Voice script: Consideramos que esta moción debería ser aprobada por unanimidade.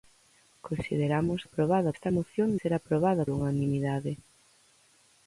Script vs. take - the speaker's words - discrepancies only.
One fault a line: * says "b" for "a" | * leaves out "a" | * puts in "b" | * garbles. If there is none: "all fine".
* says "aprobada" for "que"
* leaves out "debería"
* leaves out "por"